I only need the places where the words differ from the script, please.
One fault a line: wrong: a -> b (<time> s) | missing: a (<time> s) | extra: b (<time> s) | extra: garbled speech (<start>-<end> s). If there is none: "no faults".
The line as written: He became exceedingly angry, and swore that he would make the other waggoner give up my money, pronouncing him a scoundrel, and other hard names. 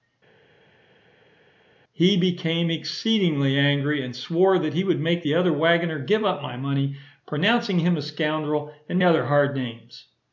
no faults